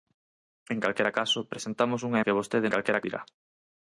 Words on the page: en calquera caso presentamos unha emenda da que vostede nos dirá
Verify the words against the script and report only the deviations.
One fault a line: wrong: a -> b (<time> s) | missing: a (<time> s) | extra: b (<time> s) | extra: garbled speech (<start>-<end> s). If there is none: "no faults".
missing: emenda da (2.2 s)
wrong: nos -> calquera (2.7 s)